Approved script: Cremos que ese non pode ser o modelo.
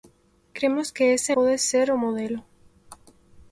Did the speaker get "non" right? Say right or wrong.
wrong